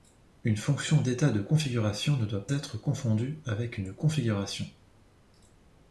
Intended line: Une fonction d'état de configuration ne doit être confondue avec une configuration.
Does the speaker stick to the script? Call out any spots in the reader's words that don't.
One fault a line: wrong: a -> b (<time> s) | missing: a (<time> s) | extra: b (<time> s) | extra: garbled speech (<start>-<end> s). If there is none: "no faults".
no faults